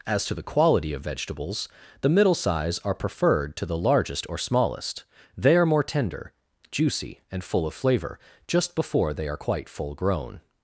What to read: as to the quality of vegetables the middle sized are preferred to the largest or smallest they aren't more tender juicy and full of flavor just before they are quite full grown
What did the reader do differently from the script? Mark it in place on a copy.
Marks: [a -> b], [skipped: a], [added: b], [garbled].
as to the quality of vegetables the middle [sized -> size] are preferred to the largest or smallest they [aren't -> are] more tender juicy and full of flavor just before they are quite full grown